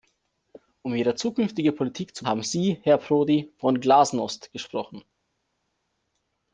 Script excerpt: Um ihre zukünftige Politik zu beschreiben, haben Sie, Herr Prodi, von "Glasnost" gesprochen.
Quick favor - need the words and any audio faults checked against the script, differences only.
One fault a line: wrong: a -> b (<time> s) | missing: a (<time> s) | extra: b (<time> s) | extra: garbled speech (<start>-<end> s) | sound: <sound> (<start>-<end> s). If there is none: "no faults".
missing: beschreiben (2.2 s)